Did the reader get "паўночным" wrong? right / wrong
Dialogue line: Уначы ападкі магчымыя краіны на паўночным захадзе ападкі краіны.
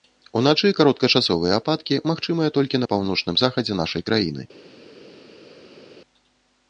right